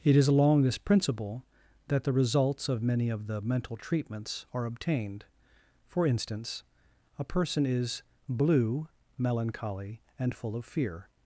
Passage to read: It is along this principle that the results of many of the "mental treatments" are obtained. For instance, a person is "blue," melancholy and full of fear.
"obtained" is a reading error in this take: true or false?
false